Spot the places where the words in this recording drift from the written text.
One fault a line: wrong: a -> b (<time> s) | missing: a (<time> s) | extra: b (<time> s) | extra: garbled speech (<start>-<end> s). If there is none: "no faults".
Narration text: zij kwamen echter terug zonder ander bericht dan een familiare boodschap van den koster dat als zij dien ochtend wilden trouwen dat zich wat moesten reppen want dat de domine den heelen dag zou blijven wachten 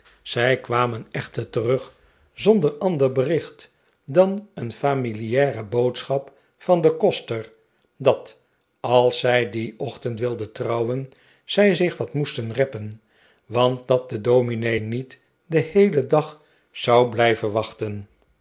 wrong: dat -> zij (11.4 s)
extra: niet (14.8 s)